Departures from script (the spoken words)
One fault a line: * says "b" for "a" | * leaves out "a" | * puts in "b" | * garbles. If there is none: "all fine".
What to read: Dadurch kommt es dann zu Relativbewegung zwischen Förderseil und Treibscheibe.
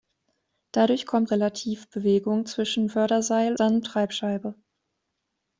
* leaves out "es dann zu"
* says "dann" for "und"